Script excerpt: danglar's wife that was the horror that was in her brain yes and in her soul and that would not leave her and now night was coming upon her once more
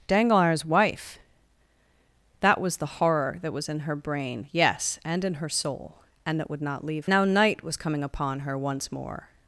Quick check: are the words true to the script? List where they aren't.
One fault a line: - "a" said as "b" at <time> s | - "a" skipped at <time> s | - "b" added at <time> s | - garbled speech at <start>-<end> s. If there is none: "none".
- "her and" skipped at 7.1 s